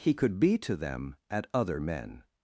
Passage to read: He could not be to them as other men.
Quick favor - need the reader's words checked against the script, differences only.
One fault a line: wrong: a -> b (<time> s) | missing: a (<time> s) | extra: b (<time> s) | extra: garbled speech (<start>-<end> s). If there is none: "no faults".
missing: not (0.4 s)
wrong: as -> at (1.3 s)